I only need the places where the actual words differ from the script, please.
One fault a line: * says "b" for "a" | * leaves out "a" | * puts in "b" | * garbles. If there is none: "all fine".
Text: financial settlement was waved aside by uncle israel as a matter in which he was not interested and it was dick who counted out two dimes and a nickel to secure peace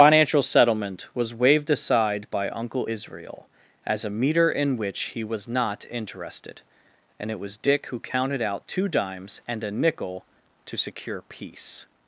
* says "meter" for "matter"